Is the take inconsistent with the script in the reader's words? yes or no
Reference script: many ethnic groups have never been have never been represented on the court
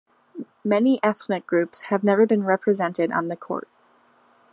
yes